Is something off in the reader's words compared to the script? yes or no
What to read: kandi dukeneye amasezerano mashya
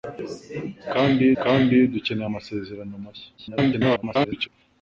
yes